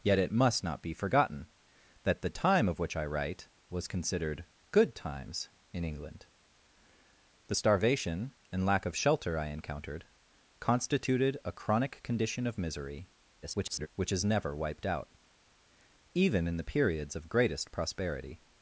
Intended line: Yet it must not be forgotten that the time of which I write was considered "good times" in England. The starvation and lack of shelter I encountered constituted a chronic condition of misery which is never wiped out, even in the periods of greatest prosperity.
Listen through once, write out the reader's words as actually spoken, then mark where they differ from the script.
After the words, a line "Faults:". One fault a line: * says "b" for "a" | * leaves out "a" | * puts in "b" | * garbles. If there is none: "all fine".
Yet it must not be forgotten that the time of which I write was considered "good times" in England. The starvation and lack of shelter I encountered constituted a chronic condition of misery [garbled] which is never wiped out, even in the periods of greatest prosperity.
Faults:
* garbles